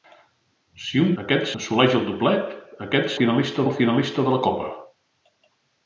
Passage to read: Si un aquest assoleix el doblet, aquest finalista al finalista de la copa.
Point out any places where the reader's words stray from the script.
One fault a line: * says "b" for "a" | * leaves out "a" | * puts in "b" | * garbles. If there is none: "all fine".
all fine